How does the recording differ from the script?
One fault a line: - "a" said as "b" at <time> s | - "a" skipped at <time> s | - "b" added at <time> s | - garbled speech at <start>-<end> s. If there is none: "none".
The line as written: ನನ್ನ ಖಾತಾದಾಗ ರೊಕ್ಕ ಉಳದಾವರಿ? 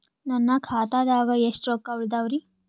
- "ಎಷ್ಟ" added at 1.4 s